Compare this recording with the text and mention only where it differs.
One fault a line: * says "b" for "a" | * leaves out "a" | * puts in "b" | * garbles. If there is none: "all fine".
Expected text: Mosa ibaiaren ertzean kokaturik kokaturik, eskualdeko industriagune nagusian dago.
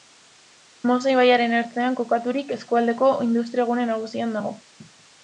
* leaves out "kokaturik"